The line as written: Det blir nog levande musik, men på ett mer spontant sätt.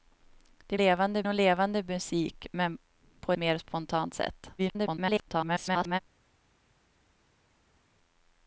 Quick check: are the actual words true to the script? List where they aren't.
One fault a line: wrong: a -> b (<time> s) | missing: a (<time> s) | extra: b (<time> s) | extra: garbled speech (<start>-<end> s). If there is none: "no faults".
wrong: blir -> levande (0.7 s)
missing: ett (3.3 s)
extra: garbled speech (4.6-6.0 s)